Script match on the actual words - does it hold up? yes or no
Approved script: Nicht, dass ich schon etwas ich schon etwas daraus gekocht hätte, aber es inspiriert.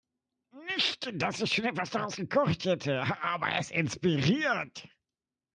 no